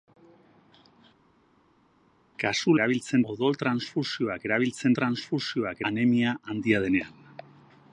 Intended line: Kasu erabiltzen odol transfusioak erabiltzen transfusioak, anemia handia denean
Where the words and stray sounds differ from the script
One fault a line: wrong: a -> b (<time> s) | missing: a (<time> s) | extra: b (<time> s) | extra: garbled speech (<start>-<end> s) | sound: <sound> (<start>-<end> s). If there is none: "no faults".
no faults